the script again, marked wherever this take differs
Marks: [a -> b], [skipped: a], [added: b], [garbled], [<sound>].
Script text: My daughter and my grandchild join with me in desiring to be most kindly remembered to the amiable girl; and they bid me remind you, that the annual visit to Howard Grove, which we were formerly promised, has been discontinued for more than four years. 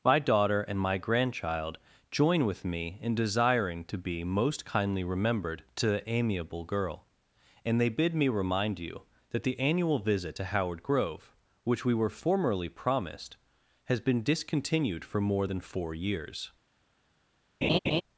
My daughter and my grandchild join with me in desiring to be most kindly remembered to the amiable girl; and they bid me remind you, that the annual visit to Howard Grove, which we were formerly promised, has been discontinued for more than four years. [laugh]